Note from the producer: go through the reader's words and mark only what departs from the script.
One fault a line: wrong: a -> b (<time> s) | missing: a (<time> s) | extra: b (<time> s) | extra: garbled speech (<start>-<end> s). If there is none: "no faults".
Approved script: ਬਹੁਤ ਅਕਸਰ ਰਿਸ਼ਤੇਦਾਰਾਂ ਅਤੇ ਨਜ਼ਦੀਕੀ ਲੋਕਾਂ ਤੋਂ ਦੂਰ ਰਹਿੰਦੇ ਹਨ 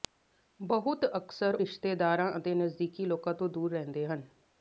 no faults